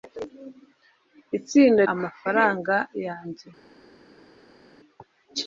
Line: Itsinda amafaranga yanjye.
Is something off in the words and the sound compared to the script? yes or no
no